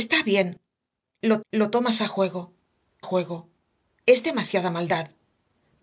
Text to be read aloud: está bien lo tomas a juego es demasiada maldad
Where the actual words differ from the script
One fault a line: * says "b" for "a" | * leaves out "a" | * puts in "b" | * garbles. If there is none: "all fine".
* puts in "lo"
* puts in "juego"